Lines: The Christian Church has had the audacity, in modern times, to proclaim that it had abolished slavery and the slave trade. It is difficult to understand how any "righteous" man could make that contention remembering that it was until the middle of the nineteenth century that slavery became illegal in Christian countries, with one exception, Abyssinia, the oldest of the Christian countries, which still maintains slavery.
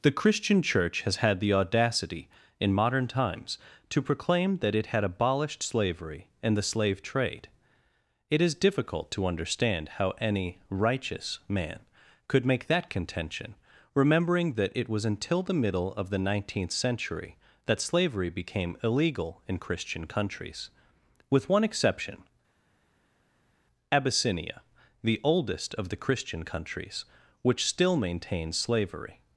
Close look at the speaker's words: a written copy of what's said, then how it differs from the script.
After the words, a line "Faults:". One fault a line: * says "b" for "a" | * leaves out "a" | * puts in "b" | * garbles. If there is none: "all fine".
The Christian Church has had the audacity, in modern times, to proclaim that it had abolished slavery and the slave trade. It is difficult to understand how any "righteous" man could make that contention remembering that it was until the middle of the nineteenth century that slavery became illegal in Christian countries, with one exception, Abyssinia, the oldest of the Christian countries, which still maintains slavery.
Faults:
all fine